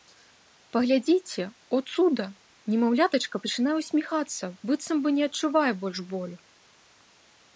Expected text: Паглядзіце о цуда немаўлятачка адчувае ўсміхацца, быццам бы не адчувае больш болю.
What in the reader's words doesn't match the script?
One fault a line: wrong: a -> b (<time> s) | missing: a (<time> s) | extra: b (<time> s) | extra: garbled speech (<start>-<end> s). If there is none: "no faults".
wrong: адчувае -> пачынае (3.4 s)